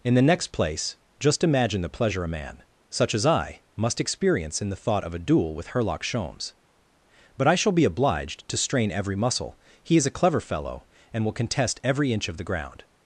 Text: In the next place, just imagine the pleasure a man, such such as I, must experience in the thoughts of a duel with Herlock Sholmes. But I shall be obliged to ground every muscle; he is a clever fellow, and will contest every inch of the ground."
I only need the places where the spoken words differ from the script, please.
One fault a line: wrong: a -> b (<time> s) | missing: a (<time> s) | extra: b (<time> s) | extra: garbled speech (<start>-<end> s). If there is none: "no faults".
missing: such (3.1 s)
wrong: thoughts -> thought (4.8 s)
wrong: ground -> strain (8.6 s)